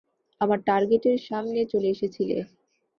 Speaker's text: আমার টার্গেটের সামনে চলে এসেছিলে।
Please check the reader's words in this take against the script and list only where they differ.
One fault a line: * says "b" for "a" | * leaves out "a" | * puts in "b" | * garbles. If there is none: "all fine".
all fine